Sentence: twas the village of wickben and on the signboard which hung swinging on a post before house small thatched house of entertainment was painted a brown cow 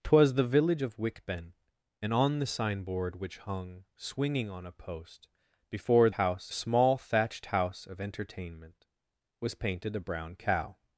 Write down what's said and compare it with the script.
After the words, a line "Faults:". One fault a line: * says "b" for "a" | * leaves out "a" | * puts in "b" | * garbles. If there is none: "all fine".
twas the village of wickben and on the signboard which hung swinging on a post before house small thatched house of entertainment was painted a brown cow
Faults:
all fine